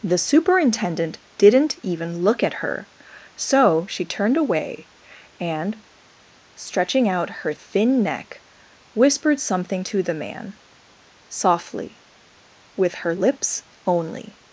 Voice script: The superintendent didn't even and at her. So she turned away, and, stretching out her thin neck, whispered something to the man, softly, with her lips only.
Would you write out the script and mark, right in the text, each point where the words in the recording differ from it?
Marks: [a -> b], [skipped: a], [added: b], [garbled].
The superintendent didn't even [and -> look] at her. So she turned away, and, stretching out her thin neck, whispered something to the man, softly, with her lips only.